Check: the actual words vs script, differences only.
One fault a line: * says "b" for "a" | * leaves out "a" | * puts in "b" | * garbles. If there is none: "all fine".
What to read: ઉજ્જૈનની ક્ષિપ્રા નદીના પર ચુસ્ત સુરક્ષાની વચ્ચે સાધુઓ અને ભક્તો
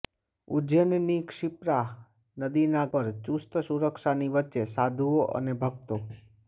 all fine